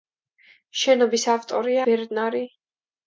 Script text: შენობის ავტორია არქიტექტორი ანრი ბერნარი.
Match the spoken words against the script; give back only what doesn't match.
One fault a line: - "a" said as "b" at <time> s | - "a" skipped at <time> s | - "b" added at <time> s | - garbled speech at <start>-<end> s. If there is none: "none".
- "არქიტექტორი ანრი" skipped at 1.8 s